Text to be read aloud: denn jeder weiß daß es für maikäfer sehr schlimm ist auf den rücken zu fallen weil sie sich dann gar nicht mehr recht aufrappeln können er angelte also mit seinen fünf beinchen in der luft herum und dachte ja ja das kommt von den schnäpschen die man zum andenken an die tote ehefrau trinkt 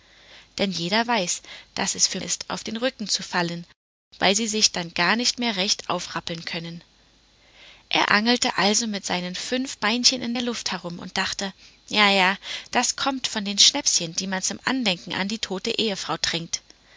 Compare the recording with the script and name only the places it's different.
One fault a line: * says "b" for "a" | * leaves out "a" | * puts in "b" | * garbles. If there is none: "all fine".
* leaves out "maikäfer sehr schlimm"